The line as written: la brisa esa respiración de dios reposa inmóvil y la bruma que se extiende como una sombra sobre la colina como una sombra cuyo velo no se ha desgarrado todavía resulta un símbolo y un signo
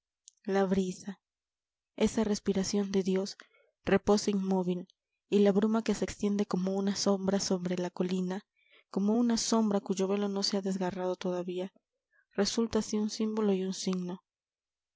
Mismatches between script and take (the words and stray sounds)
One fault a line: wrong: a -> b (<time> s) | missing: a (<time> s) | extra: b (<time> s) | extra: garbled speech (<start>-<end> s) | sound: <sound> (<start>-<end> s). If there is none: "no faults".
extra: así (12.8 s)